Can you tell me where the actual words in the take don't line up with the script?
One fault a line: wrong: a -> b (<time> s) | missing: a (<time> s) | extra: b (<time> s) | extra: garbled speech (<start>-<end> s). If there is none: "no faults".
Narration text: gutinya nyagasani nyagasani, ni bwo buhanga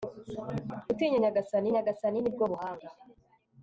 no faults